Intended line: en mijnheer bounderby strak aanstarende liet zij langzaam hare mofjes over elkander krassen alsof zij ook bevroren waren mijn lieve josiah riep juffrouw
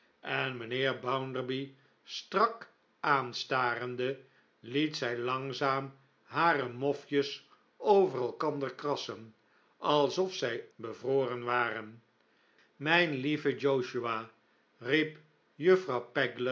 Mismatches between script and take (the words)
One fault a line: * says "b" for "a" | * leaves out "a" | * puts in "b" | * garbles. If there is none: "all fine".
* leaves out "ook"